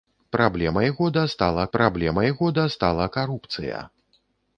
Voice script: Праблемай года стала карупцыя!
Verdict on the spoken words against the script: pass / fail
fail